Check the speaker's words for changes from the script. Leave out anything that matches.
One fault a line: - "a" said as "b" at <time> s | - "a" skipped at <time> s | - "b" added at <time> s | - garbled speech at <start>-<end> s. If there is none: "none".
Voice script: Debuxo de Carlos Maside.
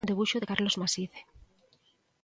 none